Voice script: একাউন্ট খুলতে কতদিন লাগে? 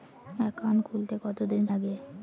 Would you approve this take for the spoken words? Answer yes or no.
yes